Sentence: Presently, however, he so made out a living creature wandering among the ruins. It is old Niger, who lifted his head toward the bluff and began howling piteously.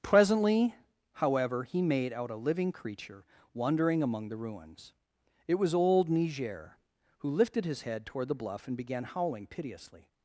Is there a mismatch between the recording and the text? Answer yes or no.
yes